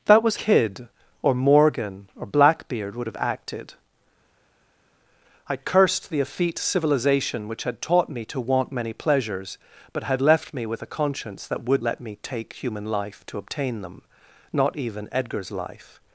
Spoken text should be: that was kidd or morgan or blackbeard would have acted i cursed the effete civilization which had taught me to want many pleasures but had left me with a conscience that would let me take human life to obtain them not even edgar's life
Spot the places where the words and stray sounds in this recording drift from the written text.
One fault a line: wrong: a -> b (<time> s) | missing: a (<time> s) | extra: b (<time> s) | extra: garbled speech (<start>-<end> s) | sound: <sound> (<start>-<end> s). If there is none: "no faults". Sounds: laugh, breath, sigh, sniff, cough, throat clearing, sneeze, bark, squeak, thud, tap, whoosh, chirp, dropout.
no faults